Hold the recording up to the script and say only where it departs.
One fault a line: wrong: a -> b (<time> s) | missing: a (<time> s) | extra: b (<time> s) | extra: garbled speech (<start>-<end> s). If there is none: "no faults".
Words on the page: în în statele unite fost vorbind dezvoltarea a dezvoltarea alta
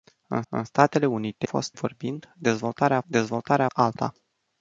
no faults